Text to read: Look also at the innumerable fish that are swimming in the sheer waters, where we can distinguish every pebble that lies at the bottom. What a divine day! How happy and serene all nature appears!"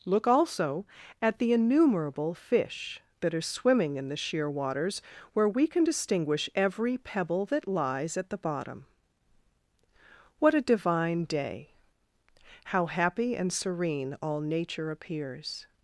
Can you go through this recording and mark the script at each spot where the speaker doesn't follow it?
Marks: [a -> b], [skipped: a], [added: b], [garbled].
Look also at the innumerable fish that are swimming in the sheer waters, where we can distinguish every pebble that lies at the bottom. What a divine day! How happy and serene all nature appears!"